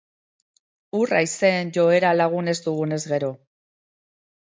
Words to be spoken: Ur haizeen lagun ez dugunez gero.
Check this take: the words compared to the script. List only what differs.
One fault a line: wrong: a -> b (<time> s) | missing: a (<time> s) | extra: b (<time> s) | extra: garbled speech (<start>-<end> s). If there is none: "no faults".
extra: joera (1.8 s)